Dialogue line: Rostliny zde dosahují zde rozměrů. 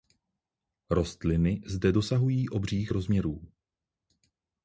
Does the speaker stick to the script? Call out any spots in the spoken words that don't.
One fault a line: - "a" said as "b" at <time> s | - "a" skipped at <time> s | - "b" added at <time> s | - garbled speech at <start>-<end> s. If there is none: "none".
- "zde" said as "obřích" at 2.5 s